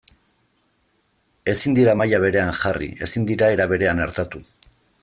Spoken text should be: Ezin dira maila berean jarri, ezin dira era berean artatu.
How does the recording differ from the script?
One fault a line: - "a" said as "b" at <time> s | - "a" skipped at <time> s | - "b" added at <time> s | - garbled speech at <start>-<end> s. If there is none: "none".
none